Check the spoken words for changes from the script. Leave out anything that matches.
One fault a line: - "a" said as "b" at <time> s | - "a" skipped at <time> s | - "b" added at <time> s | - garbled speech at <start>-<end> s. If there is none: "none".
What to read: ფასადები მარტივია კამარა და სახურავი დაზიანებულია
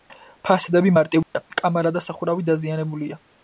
none